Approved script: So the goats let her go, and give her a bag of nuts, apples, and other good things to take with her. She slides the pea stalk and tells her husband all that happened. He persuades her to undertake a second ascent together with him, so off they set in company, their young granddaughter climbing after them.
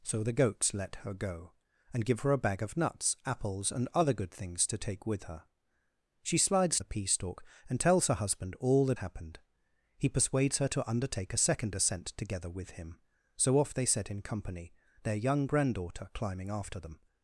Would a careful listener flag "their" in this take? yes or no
no